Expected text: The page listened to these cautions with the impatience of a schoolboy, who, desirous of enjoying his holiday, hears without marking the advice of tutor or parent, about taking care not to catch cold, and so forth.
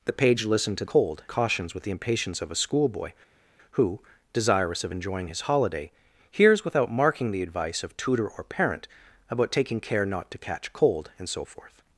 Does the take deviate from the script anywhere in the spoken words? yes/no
yes